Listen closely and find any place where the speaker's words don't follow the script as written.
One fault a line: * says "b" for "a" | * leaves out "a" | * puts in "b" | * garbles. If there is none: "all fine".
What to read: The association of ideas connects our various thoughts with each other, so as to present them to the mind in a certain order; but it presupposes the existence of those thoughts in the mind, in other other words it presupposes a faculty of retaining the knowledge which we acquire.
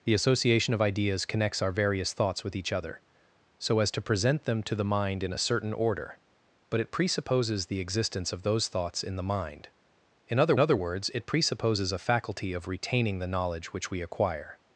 all fine